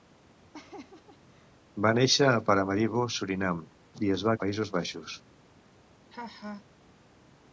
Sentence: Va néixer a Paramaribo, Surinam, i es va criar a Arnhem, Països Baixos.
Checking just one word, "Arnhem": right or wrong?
wrong